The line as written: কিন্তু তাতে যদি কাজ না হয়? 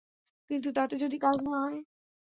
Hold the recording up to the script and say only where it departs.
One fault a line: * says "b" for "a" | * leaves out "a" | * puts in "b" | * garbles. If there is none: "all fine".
all fine